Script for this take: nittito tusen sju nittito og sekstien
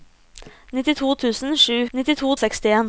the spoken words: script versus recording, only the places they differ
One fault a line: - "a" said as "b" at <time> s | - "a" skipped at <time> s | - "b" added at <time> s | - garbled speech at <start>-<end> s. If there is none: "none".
none